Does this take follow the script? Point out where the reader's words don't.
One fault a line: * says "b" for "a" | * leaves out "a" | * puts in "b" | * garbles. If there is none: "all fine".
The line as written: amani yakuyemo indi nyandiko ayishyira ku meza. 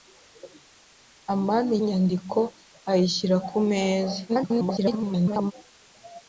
* leaves out "yakuyemo indi"
* garbles